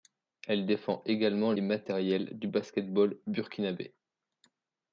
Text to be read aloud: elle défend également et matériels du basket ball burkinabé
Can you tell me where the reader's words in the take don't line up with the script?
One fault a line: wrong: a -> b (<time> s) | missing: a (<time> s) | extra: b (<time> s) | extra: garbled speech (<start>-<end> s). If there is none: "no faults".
no faults